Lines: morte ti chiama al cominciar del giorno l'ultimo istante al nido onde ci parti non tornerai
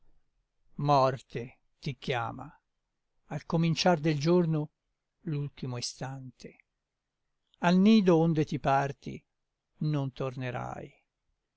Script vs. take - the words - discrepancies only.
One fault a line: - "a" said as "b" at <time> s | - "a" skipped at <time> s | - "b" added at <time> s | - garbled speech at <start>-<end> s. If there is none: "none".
- "ci" said as "ti" at 8.4 s